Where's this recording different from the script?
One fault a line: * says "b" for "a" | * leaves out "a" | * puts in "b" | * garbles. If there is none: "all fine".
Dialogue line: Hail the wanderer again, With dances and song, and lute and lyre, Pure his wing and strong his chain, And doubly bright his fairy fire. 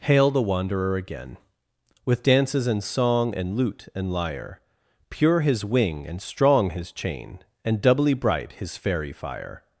all fine